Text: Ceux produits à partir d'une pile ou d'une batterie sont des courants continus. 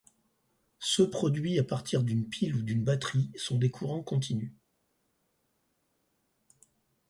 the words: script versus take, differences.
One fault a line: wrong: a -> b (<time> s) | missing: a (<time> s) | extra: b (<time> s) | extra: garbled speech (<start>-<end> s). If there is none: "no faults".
no faults